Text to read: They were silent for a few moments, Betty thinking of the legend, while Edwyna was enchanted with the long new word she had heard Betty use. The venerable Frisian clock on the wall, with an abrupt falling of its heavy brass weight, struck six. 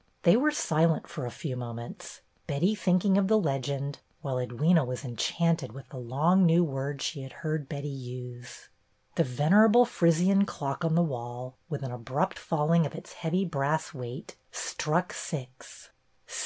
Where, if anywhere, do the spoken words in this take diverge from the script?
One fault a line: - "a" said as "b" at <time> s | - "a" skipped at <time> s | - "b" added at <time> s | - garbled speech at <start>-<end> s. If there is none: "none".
none